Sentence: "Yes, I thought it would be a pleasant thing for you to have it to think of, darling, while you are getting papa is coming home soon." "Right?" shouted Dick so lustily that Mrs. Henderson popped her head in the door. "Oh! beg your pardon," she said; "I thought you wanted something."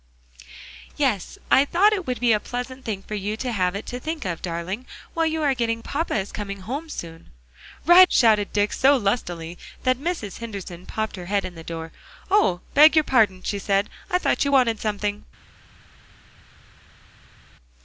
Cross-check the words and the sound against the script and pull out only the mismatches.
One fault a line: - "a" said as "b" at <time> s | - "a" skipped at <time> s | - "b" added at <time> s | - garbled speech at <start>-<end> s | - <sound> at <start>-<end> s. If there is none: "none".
none